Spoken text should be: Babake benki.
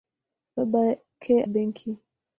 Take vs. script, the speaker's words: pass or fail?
pass